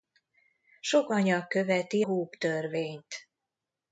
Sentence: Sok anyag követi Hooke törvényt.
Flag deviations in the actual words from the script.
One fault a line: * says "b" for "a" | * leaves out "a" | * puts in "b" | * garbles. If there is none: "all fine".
all fine